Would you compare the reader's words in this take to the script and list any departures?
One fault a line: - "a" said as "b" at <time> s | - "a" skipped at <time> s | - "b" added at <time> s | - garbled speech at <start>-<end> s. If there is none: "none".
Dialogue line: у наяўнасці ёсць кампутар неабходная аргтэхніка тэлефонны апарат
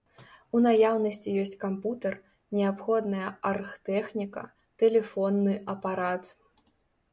none